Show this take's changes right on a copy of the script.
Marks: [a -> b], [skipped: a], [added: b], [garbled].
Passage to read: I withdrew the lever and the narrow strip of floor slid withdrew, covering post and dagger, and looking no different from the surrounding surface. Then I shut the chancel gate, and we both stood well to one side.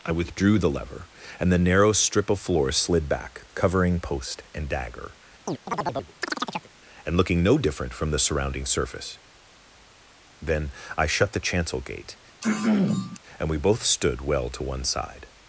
I withdrew the lever and the narrow strip of floor slid [withdrew, -> back] covering post and dagger, and looking no different from the surrounding surface. Then I shut the chancel gate, and we both stood well to one side.